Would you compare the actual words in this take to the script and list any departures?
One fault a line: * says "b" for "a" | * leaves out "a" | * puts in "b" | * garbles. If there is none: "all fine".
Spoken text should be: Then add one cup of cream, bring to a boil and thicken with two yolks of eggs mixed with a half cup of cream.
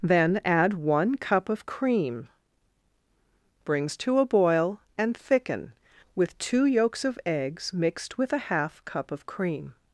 * says "brings" for "bring"